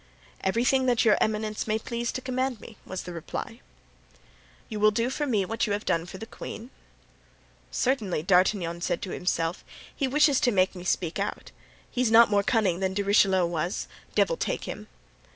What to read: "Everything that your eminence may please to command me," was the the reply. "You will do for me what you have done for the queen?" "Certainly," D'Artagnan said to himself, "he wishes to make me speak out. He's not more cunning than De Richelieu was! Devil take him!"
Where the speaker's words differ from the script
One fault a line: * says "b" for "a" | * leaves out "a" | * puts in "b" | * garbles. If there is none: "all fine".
* leaves out "the"